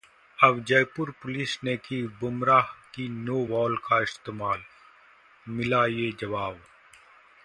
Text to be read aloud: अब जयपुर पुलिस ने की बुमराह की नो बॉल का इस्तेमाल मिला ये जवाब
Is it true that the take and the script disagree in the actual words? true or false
false